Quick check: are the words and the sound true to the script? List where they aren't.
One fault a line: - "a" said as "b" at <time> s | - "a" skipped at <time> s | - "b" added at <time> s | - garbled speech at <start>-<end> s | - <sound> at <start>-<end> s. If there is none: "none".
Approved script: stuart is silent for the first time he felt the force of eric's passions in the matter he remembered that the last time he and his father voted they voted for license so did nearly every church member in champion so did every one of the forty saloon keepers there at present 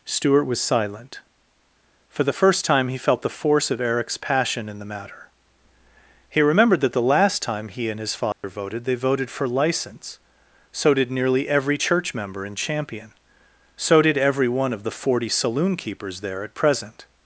- "is" said as "was" at 0.5 s
- "passions" said as "passion" at 4.2 s
- dropout at 8.3-8.4 s